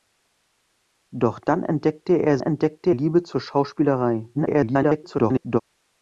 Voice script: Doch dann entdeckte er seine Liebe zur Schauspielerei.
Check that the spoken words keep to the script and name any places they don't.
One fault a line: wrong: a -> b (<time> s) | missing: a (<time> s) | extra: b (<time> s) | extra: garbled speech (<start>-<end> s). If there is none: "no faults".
wrong: seine -> entdeckte (2.4 s)
extra: garbled speech (4.3-5.6 s)